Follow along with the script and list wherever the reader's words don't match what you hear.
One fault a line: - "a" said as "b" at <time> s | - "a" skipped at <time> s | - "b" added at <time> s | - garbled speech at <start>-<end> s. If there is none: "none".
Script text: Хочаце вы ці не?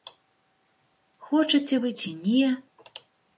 none